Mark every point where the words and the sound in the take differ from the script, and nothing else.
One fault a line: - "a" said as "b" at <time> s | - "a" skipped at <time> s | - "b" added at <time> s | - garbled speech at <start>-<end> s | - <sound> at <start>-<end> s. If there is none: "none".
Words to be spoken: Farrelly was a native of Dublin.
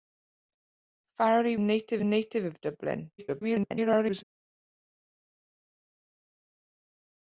- "was" said as "native" at 1.6 s
- garbled speech at 3.2-4.2 s